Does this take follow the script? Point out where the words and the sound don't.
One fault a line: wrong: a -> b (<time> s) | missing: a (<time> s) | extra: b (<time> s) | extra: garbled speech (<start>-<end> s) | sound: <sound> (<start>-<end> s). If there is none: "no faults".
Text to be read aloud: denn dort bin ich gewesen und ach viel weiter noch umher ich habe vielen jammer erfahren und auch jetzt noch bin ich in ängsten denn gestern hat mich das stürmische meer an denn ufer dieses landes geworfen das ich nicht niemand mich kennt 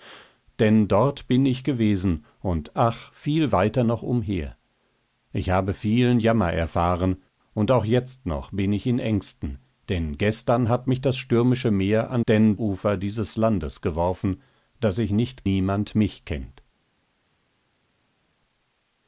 no faults